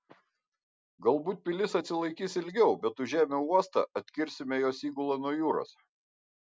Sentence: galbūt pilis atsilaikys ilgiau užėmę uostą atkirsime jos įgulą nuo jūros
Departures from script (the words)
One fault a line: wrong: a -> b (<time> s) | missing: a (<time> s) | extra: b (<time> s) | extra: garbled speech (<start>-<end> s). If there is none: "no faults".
extra: bet (2.9 s)